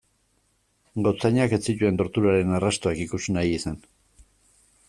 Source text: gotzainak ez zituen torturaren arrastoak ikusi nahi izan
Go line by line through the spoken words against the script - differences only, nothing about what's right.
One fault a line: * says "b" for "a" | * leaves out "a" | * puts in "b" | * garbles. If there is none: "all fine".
all fine